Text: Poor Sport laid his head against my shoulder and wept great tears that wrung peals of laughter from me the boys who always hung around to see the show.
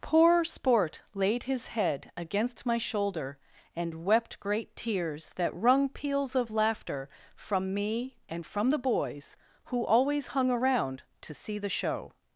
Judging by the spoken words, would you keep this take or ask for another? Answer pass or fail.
fail